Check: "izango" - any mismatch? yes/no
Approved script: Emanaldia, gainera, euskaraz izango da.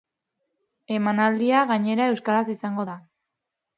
no